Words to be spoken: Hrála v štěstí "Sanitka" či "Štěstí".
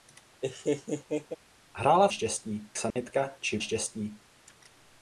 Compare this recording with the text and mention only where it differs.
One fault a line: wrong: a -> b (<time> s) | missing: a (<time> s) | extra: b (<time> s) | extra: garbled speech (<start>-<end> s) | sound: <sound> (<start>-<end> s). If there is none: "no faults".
sound: laugh (0.4-1.4 s)
sound: dropout (2.9-3.0 s)